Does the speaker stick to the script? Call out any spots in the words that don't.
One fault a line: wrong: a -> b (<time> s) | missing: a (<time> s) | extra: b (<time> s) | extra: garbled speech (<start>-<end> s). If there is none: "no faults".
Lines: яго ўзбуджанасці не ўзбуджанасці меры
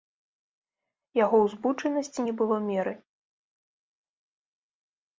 wrong: ўзбуджанасці -> было (2.4 s)